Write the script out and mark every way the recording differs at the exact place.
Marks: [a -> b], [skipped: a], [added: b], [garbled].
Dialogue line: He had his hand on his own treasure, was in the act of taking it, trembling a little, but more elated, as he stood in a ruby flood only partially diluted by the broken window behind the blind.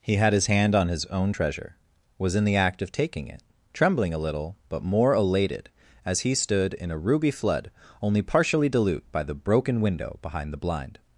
He had his hand on his own treasure, was in the act of taking it, trembling a little, but more elated, as he stood in a ruby flood only partially [diluted -> dilute] by the broken window behind the blind.